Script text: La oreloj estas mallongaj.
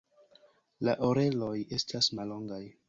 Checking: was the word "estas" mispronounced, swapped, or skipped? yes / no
no